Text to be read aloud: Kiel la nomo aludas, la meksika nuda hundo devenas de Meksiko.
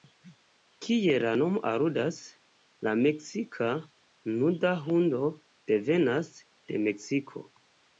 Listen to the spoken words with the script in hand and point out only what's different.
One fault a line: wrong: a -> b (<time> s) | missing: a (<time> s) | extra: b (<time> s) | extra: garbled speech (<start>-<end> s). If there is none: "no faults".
no faults